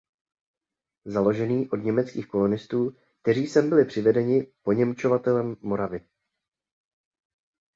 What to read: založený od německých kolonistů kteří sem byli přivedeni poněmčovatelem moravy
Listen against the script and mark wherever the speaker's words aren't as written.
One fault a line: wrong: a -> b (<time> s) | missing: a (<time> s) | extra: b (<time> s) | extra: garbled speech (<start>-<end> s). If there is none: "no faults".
no faults